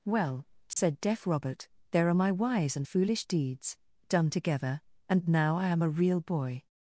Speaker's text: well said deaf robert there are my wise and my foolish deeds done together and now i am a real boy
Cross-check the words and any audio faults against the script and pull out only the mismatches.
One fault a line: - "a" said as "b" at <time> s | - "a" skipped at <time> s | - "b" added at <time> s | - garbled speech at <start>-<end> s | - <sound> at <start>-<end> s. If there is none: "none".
- dropout at 0.7-0.8 s
- "my" skipped at 2.9 s